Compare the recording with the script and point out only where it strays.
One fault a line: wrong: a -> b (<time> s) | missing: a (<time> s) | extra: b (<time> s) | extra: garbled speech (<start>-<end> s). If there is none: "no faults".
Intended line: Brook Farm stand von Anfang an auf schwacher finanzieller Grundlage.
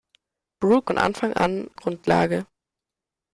missing: Farm stand (0.9 s)
missing: auf schwacher finanzieller (1.7 s)